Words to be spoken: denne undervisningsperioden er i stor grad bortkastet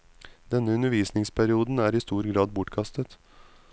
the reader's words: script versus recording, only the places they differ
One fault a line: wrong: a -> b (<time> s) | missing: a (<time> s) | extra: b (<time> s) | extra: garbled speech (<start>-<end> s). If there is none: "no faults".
no faults